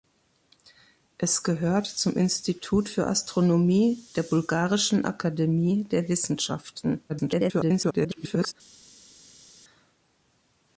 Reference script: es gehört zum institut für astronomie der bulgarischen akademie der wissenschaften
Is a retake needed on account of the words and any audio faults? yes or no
yes